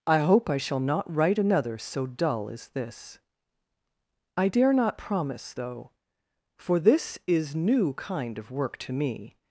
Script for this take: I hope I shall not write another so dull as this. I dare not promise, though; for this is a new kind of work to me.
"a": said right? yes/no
no